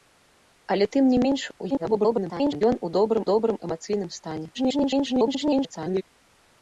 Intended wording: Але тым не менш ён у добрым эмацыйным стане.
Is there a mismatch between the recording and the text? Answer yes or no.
yes